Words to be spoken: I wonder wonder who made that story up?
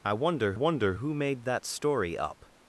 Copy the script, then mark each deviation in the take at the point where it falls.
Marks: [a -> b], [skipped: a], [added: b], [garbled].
I wonder wonder who made that story up?